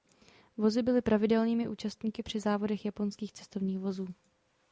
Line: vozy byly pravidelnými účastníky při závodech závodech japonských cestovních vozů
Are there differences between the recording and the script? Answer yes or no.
yes